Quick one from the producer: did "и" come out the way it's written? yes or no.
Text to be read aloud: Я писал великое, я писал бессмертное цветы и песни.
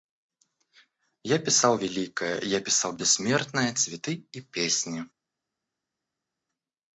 yes